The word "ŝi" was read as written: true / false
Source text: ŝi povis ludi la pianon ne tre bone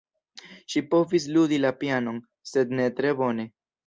true